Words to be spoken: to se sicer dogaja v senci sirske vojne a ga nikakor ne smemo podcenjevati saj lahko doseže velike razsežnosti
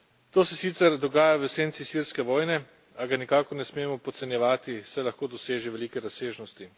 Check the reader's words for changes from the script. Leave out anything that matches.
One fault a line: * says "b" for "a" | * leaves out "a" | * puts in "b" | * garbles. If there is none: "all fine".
all fine